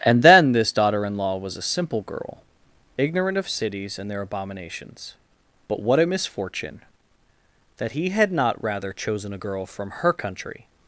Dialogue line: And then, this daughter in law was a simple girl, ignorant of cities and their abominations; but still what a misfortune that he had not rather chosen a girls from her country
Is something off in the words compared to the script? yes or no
yes